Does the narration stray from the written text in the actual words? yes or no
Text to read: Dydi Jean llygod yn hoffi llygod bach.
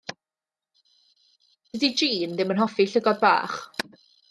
yes